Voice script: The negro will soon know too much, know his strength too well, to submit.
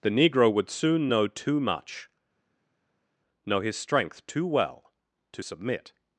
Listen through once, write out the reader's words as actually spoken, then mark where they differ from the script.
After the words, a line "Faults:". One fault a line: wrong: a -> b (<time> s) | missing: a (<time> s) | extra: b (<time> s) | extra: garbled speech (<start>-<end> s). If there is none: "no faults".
The negro would soon know too much, know his strength too well, to submit.
Faults:
wrong: will -> would (0.5 s)